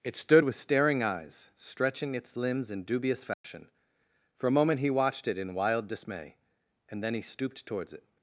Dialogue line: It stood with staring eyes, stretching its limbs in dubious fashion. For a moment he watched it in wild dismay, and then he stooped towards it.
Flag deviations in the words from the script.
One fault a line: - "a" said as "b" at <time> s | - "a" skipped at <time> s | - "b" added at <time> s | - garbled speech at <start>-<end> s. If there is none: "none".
none